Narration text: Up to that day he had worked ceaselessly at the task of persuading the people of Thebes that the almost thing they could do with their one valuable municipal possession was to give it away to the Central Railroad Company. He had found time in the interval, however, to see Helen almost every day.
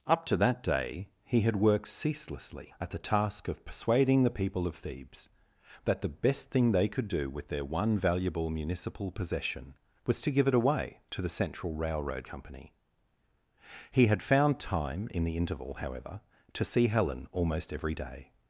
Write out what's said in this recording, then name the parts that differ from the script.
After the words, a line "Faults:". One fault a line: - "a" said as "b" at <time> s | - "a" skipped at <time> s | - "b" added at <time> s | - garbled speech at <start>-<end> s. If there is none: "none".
Up to that day he had worked ceaselessly at the task of persuading the people of Thebes that the best thing they could do with their one valuable municipal possession was to give it away to the Central Railroad Company. He had found time in the interval, however, to see Helen almost every day.
Faults:
- "almost" said as "best" at 6.1 s